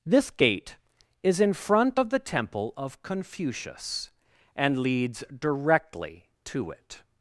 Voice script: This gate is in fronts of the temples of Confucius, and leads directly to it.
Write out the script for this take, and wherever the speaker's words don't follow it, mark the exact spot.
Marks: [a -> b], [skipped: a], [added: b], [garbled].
This gate is in [fronts -> front] of the [temples -> temple] of Confucius, and leads directly to it.